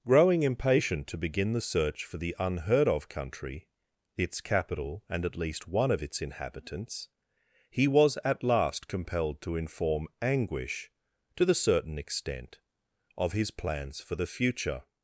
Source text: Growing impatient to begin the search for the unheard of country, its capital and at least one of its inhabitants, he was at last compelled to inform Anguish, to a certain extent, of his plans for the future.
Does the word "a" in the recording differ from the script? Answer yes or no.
yes